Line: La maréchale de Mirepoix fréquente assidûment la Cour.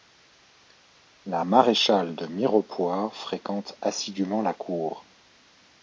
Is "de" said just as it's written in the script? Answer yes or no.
yes